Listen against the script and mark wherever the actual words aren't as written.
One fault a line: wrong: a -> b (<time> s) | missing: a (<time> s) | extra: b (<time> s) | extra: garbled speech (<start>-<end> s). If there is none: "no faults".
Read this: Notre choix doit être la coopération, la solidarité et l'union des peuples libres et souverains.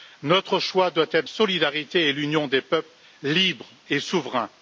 missing: la coopération la (1.3 s)